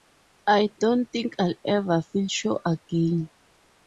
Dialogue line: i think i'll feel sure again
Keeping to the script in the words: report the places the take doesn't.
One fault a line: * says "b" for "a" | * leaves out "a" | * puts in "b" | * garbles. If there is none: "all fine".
* puts in "don't"
* puts in "ever"